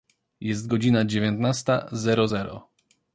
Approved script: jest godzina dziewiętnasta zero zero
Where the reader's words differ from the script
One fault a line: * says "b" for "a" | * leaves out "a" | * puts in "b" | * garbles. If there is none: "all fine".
all fine